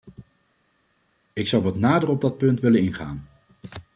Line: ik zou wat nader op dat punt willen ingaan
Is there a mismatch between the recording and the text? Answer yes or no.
no